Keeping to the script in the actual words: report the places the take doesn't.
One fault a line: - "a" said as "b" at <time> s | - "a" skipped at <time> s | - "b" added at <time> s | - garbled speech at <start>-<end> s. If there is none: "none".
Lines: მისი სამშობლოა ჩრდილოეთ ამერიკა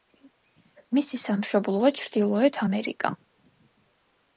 none